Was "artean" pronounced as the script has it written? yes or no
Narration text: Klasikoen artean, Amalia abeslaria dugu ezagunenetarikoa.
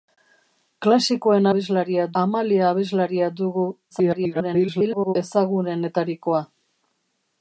no